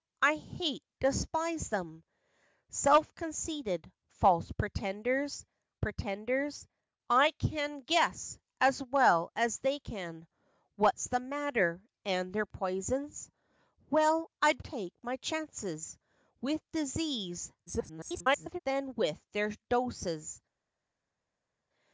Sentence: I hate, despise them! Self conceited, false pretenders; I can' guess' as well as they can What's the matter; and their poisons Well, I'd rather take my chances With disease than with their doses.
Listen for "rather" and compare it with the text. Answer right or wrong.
wrong